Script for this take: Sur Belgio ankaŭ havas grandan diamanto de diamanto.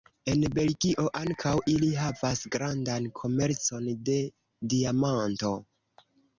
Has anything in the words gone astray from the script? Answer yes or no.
yes